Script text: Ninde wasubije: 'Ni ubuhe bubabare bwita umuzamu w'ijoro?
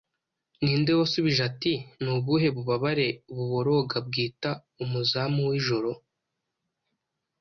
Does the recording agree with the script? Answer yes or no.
no